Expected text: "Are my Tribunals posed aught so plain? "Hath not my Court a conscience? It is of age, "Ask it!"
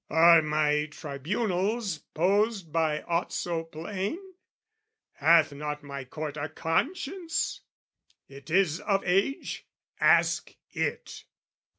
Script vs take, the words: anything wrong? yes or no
yes